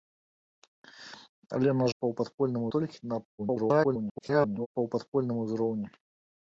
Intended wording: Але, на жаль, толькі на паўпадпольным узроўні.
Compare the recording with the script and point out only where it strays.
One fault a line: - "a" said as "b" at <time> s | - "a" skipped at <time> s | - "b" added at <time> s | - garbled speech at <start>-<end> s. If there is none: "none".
- "жаль" said as "паўпадпольным" at 2.0 s
- garbled speech at 3.4-4.7 s